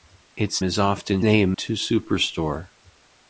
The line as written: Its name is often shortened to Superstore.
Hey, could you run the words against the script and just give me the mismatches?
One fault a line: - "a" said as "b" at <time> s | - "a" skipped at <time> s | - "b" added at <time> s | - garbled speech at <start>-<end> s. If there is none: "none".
- "name" skipped at 0.6 s
- "shortened" said as "name" at 1.2 s